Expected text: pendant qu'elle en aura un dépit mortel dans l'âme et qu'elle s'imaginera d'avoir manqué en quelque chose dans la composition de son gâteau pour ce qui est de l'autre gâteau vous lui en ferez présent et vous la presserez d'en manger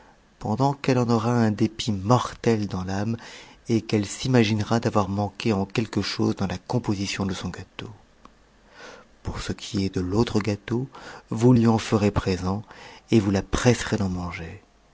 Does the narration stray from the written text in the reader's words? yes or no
no